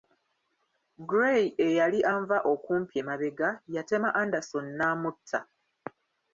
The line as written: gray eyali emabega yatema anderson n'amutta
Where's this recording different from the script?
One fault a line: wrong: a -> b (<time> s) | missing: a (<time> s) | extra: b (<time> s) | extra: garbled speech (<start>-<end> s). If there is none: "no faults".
extra: anva okumpi (2.1 s)